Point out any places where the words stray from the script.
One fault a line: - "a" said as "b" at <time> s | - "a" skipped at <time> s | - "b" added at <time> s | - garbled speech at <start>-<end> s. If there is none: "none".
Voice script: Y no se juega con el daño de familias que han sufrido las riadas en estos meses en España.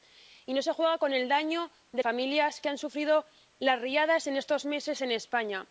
none